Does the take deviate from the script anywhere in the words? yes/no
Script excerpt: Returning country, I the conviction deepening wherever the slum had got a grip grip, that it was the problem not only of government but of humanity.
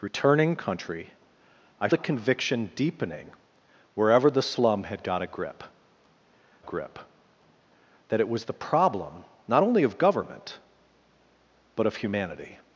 no